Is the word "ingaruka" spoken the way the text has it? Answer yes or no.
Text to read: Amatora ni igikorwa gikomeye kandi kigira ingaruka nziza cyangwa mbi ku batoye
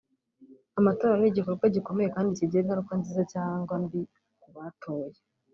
yes